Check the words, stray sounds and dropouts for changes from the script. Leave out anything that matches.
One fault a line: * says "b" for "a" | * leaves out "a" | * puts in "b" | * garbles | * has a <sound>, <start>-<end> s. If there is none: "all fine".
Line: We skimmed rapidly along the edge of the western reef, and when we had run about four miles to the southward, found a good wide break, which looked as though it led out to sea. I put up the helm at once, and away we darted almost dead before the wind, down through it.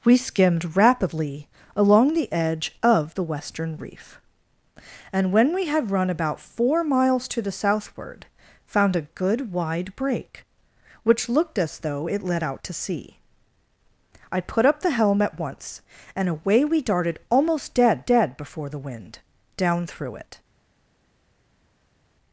* puts in "dead"